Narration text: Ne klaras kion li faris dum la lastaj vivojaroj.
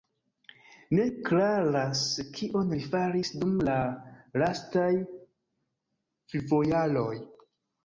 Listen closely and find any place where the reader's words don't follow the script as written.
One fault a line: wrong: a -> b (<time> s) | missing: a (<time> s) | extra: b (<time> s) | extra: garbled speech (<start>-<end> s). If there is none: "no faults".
no faults